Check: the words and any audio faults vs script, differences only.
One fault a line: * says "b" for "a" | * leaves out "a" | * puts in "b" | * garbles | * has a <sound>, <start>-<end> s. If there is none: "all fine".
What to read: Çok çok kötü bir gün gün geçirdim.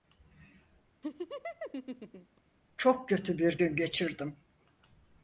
* has a laugh, 1.0-2.4 s
* leaves out "çok"
* leaves out "gün"